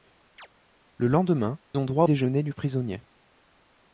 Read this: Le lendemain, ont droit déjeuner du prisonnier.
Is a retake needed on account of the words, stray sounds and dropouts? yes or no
yes